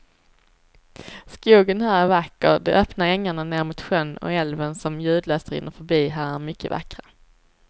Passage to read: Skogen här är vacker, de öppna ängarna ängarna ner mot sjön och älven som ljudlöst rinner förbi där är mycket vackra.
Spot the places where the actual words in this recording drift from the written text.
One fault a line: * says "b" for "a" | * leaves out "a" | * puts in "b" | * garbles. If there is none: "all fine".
* leaves out "ängarna"
* says "här" for "där"